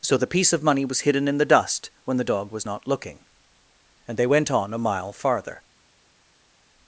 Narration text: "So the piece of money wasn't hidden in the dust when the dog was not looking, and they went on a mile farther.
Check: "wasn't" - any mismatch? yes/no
yes